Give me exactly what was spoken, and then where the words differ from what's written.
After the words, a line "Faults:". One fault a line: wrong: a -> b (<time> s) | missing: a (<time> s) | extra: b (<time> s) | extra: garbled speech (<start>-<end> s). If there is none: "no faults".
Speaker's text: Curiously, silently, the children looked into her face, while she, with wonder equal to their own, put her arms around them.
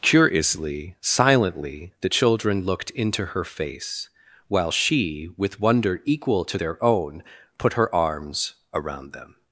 Curiously, silently, the children looked into her face, while she, with wonder equal to their own, put her arms around them.
Faults:
no faults